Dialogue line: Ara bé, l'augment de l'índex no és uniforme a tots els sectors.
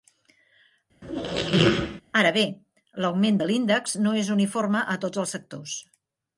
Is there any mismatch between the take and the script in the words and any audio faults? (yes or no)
yes